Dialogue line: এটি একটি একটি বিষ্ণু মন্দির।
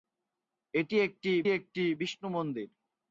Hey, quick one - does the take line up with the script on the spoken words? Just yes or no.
yes